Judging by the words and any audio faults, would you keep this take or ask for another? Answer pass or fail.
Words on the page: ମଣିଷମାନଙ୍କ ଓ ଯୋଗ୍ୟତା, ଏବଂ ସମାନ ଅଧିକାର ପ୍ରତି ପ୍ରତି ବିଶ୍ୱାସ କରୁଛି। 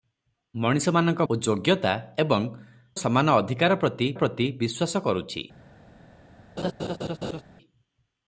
fail